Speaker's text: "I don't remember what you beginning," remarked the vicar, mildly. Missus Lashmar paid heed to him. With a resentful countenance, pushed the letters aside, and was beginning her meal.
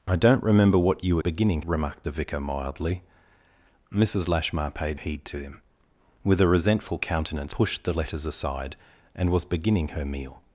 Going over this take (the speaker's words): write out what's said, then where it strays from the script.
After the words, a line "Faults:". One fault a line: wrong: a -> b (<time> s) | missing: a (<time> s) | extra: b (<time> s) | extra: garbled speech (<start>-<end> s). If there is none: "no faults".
"I don't remember what you beginning," remarked the vicar, mildly. Missus Lashmar paid heed to him. With a resentful countenance, pushed the letters aside, and was beginning her meal.
Faults:
no faults